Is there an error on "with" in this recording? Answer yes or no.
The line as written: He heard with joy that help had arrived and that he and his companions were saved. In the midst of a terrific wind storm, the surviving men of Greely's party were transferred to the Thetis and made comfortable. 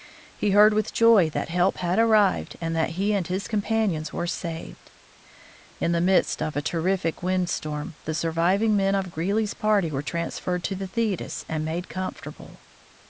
no